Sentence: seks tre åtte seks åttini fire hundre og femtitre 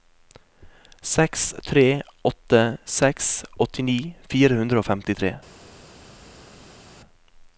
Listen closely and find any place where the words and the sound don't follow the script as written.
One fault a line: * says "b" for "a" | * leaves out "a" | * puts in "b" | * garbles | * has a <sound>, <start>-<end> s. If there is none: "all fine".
all fine